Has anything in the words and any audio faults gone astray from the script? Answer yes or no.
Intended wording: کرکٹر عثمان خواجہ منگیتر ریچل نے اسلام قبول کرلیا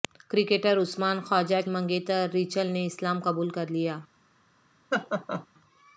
yes